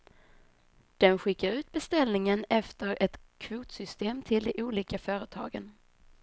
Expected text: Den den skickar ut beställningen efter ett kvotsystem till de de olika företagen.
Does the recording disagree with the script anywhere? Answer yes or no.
yes